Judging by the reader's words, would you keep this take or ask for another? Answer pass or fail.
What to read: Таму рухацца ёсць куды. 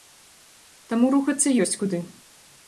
pass